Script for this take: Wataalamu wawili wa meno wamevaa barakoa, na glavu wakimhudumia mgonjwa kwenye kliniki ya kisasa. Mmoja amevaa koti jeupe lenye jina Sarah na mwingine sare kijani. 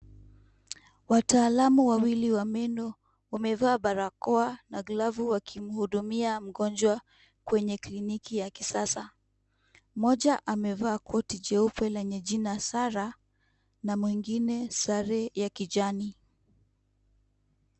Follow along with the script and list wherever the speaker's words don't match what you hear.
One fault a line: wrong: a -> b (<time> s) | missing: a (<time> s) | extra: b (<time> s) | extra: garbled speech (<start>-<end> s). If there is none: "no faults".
extra: ya (15.3 s)